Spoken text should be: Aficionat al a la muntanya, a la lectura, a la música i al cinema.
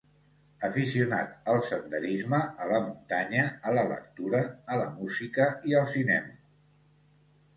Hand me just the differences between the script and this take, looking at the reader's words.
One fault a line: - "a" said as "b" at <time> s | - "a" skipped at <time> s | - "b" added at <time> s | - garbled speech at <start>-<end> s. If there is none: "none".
- "senderisme" added at 1.6 s